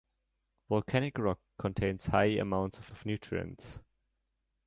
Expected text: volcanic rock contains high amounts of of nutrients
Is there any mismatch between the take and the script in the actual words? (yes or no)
no